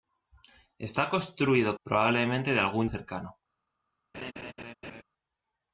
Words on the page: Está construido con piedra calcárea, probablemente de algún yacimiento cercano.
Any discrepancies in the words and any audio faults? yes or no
yes